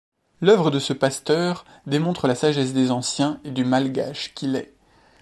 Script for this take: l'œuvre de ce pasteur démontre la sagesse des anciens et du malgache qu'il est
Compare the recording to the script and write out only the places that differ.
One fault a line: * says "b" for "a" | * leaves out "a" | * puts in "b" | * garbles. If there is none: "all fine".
all fine